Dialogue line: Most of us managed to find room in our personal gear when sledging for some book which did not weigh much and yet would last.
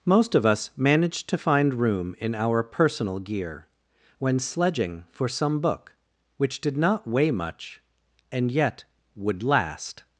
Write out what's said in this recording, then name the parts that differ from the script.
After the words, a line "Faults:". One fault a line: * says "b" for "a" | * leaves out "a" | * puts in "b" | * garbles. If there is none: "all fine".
Most of us managed to find room in our personal gear when sledging for some book which did not weigh much and yet would last.
Faults:
all fine